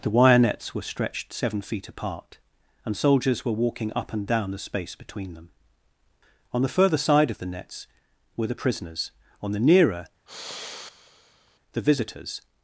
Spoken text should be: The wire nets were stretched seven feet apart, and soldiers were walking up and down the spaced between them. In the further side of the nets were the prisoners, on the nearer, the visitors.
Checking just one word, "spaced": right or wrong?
wrong